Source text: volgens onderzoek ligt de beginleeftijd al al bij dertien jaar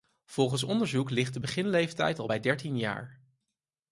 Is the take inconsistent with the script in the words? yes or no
yes